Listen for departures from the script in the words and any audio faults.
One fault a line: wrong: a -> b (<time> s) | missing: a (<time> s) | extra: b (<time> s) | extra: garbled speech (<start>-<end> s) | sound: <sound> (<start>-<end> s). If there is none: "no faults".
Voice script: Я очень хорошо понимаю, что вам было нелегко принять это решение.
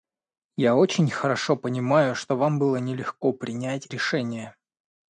missing: это (3.9 s)